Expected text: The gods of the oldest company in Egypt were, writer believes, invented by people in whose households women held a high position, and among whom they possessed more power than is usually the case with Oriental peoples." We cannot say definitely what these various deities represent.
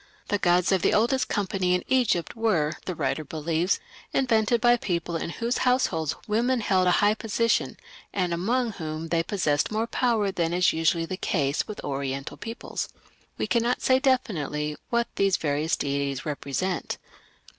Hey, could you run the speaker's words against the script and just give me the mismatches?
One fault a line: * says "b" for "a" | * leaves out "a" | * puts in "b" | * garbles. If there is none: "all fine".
* puts in "the"